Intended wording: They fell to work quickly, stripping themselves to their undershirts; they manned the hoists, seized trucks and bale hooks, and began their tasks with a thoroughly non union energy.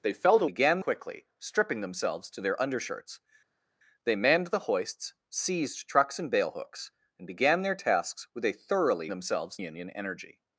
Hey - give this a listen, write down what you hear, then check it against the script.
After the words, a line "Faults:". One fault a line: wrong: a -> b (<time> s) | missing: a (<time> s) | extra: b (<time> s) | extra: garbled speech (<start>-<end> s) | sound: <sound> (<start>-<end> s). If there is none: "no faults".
They fell to began quickly, stripping themselves to their undershirts; they manned the hoists, seized trucks and bale hooks, and began their tasks with a thoroughly themselves union energy.
Faults:
wrong: work -> began (0.5 s)
wrong: non -> themselves (9.1 s)